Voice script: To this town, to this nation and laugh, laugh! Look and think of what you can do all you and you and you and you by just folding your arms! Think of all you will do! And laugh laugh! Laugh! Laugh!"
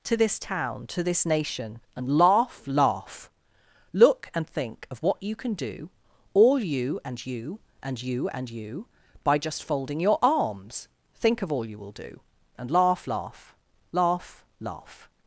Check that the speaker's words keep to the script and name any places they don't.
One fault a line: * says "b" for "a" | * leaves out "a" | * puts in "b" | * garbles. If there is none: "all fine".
all fine